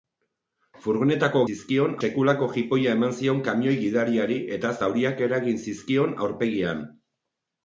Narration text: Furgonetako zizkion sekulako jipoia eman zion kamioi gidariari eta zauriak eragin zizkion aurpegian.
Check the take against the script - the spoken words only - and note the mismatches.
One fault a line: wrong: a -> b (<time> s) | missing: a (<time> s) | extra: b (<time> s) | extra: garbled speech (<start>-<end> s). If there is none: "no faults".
no faults